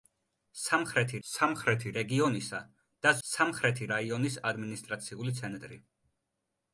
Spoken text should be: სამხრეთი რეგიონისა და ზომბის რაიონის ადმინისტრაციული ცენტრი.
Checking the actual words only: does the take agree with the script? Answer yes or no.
no